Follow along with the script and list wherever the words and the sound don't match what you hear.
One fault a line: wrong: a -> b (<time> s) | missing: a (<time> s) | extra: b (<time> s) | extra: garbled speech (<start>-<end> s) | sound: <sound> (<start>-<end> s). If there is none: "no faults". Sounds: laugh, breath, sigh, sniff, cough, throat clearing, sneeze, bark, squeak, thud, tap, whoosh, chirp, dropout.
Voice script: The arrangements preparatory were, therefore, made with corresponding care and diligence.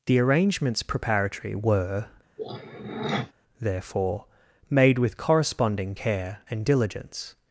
sound: throat clearing (2.4-3.3 s)